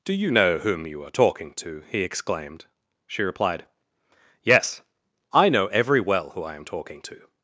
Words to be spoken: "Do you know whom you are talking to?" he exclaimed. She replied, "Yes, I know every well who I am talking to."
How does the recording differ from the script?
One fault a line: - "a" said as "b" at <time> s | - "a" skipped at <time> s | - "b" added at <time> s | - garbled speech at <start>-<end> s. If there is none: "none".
none